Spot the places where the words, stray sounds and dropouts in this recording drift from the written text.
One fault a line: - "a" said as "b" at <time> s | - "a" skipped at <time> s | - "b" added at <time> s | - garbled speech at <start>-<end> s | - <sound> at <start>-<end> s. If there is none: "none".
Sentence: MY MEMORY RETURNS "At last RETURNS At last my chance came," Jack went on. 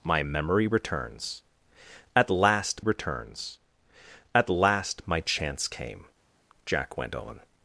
none